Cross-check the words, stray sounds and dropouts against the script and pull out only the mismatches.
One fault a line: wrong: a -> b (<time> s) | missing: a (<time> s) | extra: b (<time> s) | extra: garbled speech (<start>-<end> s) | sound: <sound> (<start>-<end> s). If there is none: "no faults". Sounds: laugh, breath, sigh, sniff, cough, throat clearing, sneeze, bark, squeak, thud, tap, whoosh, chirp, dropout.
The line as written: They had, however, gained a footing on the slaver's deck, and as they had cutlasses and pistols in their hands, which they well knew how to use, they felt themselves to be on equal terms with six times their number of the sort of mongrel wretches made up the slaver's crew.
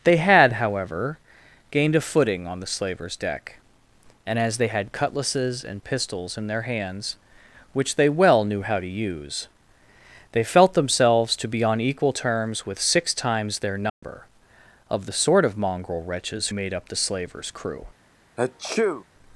sound: dropout (13.9-14.0 s)
sound: sneeze (18.4-19.0 s)